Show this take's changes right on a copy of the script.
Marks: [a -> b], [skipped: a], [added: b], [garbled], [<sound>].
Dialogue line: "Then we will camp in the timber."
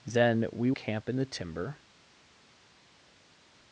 "Then we [skipped: will] camp in the timber."